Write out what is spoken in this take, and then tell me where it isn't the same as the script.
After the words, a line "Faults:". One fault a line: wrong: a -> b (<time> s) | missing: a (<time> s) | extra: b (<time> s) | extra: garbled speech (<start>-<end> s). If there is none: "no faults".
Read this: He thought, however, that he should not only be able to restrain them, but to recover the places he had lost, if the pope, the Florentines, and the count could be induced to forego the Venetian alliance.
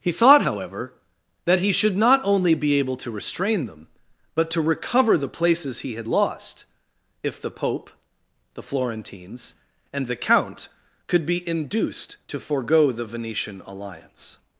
He thought, however, that he should not only be able to restrain them, but to recover the places he had lost, if the pope, the Florentines, and the count could be induced to forego the Venetian alliance.
Faults:
no faults